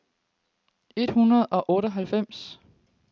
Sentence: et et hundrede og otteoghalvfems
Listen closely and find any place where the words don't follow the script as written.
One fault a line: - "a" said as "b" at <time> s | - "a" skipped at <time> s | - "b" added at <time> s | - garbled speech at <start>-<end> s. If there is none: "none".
- "et" skipped at 1.1 s